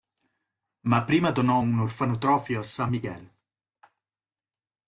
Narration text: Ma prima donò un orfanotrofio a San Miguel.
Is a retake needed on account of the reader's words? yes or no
no